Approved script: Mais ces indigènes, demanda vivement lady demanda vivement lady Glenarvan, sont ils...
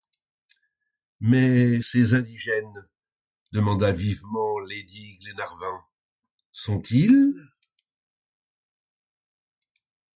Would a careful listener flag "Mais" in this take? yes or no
no